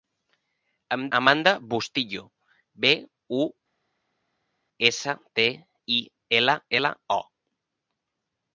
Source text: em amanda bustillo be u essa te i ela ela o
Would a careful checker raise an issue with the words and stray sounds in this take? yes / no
no